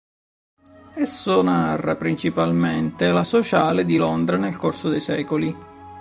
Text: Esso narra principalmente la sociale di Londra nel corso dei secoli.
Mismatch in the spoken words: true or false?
false